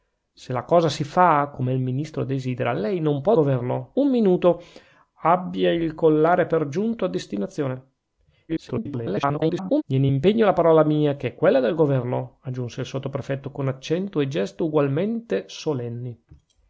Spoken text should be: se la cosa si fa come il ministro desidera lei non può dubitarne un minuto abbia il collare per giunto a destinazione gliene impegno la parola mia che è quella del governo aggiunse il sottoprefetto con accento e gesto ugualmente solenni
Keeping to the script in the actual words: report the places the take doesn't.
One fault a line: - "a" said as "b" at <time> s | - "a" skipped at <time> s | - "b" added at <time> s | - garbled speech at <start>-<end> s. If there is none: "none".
- "dubitarne" said as "governo" at 3.3 s
- garbled speech at 8.5-9.8 s